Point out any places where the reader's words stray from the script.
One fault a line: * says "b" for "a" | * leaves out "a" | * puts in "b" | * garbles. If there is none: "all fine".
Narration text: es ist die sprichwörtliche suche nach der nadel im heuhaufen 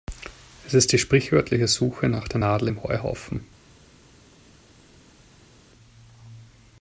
all fine